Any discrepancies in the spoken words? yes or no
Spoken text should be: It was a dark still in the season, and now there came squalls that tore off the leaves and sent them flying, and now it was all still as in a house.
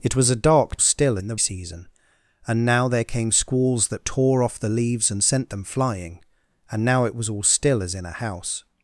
no